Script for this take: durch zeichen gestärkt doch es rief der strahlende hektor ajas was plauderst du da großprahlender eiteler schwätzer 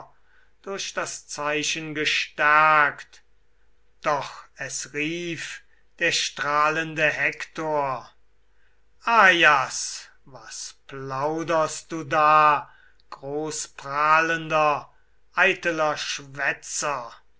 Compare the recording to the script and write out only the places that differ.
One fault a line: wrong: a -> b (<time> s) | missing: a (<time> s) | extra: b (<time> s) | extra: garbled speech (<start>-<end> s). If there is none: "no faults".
extra: das (0.9 s)